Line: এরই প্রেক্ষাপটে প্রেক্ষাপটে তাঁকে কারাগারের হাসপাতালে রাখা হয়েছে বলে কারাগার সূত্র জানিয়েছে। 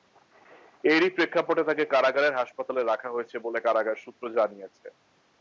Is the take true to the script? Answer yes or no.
no